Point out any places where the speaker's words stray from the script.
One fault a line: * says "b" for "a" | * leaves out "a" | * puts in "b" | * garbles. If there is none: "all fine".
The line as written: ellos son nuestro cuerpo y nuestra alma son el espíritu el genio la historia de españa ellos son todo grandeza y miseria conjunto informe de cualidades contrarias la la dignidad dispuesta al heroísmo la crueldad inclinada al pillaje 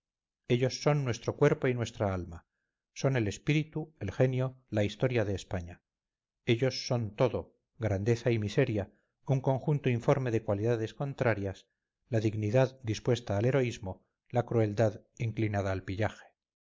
* puts in "un"
* leaves out "la"